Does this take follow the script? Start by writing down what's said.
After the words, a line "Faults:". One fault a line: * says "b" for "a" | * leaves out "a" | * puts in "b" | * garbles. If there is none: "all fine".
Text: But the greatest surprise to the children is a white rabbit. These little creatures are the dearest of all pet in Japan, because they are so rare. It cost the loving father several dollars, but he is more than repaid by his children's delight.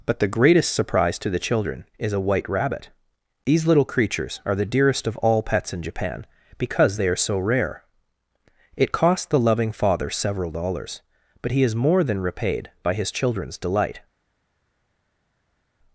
But the greatest surprise to the children is a white rabbit. These little creatures are the dearest of all pets in Japan, because they are so rare. It cost the loving father several dollars, but he is more than repaid by his children's delight.
Faults:
* says "pets" for "pet"